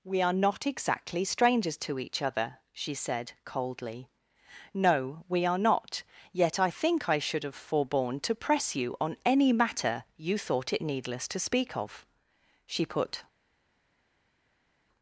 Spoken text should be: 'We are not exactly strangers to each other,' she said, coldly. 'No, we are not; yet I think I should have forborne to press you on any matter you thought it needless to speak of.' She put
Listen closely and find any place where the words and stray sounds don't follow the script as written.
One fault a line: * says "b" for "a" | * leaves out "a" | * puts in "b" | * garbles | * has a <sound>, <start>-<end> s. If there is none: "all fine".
all fine